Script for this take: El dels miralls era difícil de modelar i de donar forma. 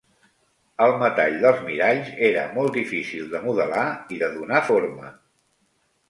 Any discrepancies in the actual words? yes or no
yes